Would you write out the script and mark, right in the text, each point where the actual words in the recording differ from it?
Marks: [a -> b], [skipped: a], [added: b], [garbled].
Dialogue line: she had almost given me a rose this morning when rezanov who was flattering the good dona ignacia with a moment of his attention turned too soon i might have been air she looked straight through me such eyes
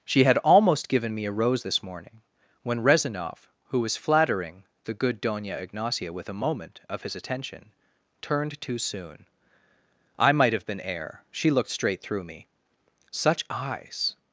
she had almost given me a rose this morning when rezanov who was flattering the good dona ignacia with a moment of his attention turned too soon i might have been air she looked straight through me such eyes